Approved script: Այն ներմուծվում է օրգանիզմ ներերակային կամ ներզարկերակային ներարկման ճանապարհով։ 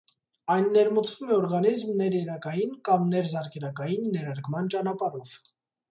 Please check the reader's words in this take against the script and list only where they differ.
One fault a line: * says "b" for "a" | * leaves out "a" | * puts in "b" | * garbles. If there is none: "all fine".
all fine